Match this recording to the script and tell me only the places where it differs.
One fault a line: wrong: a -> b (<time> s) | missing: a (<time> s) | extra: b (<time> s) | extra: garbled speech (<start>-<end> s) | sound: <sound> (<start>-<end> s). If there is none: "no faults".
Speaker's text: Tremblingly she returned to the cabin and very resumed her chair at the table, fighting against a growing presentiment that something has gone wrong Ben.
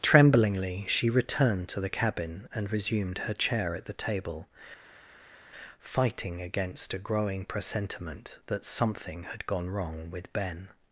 missing: very (2.7 s)
wrong: has -> had (9.2 s)
extra: with (10.1 s)